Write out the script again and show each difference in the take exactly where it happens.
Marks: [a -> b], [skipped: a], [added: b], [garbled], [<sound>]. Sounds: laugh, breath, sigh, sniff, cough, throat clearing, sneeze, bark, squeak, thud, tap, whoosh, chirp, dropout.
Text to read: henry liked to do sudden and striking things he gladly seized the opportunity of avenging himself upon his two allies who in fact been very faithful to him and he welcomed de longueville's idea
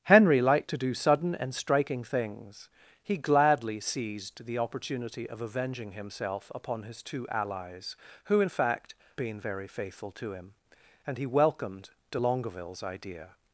henry liked to do sudden and striking things he gladly seized the opportunity of avenging himself upon his two allies who in fact been very faithful to him and he welcomed de longueville's idea